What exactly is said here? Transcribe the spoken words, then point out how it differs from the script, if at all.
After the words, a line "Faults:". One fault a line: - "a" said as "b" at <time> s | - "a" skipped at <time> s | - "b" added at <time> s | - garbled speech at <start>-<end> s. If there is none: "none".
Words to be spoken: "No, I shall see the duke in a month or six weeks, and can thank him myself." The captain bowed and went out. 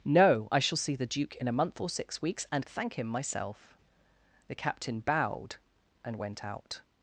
"No, I shall see the duke in a month or six weeks, and thank him myself." The captain bowed and went out.
Faults:
- "can" skipped at 2.7 s